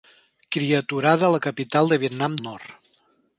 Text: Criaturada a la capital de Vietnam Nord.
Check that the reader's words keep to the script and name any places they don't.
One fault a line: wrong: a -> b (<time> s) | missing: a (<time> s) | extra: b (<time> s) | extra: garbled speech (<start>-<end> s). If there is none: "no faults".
no faults